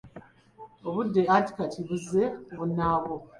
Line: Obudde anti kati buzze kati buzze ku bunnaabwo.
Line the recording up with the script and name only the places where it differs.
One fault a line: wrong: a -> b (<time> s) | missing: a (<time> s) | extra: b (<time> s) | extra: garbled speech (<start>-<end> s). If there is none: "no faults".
missing: kati buzze (2.2 s)